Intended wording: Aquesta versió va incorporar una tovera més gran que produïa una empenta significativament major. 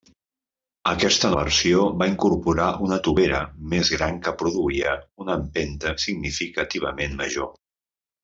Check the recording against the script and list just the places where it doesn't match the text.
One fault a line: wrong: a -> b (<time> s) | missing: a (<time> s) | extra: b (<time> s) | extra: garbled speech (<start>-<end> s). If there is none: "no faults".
no faults